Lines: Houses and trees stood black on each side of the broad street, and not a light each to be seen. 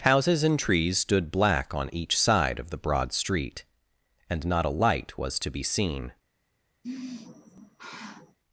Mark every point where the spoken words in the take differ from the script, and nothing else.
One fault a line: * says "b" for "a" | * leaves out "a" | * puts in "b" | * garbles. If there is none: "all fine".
* says "was" for "each"